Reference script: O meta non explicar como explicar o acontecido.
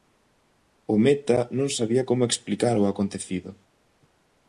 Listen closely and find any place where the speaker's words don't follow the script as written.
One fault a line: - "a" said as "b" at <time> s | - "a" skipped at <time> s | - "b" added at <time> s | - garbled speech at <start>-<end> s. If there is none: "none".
- "explicar" said as "sabía" at 1.8 s